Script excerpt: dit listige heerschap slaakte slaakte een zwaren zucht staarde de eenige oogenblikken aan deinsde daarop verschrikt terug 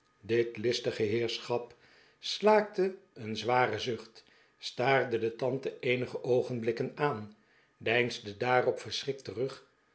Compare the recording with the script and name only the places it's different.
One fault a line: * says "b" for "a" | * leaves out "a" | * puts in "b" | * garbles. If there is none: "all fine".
* leaves out "slaakte"
* puts in "tante"